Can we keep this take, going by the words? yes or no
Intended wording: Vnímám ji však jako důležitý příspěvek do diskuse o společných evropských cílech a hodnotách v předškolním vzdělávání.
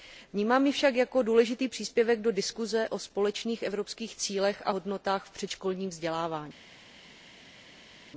yes